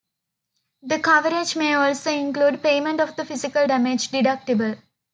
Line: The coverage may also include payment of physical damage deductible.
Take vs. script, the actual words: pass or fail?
fail